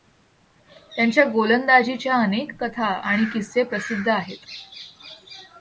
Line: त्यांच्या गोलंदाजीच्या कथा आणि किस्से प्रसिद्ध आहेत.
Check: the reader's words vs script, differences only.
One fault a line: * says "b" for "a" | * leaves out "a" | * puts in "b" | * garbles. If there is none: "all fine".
* puts in "अनेक"